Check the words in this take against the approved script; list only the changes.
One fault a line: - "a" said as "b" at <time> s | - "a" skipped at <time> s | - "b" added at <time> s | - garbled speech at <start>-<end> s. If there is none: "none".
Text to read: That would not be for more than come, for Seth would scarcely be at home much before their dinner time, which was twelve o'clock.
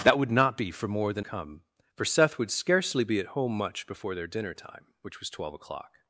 none